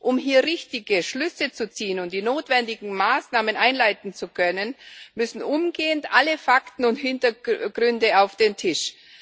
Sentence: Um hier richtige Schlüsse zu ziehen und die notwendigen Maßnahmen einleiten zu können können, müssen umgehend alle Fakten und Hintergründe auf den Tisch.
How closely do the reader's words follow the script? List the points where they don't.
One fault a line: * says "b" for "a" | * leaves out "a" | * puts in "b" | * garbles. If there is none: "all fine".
* leaves out "können"